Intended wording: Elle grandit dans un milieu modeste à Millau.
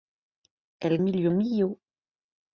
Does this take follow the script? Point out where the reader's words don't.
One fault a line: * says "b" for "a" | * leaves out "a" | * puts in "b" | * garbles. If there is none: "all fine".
* leaves out "grandit dans"
* leaves out "modeste à"